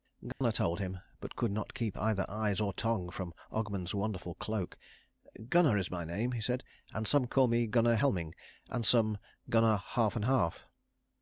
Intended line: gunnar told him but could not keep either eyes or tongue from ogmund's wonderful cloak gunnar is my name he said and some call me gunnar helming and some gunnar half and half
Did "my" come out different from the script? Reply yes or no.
no